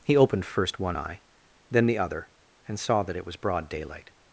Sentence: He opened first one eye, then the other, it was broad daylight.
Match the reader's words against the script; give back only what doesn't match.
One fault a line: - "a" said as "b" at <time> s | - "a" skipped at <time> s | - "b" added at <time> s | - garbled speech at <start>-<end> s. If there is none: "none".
- "and saw that" added at 2.7 s